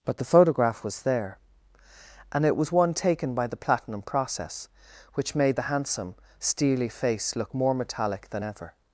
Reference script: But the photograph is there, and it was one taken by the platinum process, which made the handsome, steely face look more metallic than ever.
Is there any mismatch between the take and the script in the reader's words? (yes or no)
yes